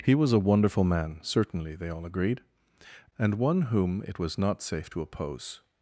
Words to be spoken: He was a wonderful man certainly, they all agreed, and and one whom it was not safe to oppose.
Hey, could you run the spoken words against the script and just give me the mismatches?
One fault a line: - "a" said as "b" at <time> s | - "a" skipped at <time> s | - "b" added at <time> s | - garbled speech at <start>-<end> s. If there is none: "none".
- "and" skipped at 3.4 s